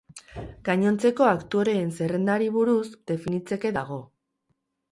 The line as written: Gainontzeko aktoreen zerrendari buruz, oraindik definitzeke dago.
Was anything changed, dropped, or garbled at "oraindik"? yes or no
yes